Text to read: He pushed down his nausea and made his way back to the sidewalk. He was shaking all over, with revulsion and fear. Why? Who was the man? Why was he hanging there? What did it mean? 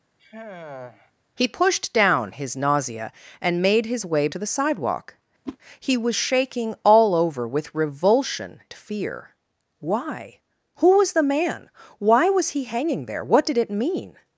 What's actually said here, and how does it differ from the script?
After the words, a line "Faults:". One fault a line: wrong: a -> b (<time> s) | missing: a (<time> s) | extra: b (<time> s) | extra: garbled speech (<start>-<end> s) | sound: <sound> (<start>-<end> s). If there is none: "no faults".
He pushed down his nausea and made his way to the sidewalk. He was shaking all over, with revulsion fear. Why? Who was the man? Why was he hanging there? What did it mean?
Faults:
sound: sigh (0.2-1.1 s)
missing: back (4.3 s)
sound: whoosh (5.5-5.6 s)
missing: and (8.6 s)